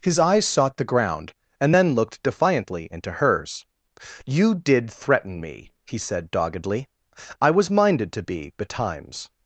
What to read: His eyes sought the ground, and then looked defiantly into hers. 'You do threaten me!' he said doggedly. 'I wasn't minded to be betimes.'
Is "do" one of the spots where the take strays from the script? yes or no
yes